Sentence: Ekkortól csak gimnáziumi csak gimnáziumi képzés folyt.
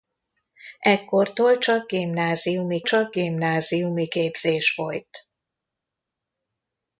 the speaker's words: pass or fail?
pass